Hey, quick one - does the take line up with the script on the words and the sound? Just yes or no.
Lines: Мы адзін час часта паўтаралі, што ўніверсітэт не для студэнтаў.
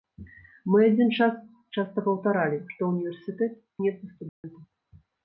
no